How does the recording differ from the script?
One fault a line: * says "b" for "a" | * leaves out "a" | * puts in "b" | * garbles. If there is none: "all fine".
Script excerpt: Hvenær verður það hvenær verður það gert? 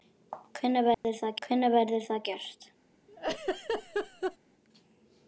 all fine